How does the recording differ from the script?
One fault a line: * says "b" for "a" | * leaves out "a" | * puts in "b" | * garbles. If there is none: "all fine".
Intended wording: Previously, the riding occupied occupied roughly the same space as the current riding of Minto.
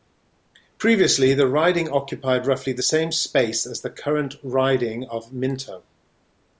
* leaves out "occupied"